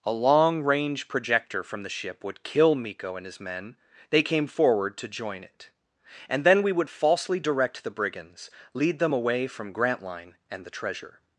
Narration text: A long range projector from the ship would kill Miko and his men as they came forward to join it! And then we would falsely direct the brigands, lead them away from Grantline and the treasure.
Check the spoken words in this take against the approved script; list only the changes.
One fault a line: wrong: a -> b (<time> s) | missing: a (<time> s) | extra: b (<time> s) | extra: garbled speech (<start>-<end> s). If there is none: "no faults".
missing: as (3.8 s)